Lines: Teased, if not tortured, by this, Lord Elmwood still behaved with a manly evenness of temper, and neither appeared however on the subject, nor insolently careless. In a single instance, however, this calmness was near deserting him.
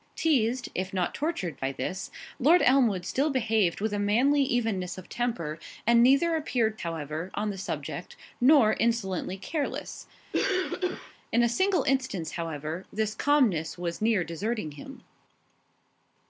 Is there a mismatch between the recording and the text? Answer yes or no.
no